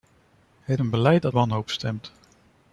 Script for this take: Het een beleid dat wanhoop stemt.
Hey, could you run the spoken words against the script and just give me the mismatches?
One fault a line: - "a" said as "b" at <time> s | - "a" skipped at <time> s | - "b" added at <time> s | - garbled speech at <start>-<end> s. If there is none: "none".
none